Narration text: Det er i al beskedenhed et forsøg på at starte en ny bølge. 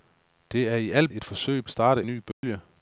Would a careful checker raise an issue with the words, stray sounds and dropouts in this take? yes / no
yes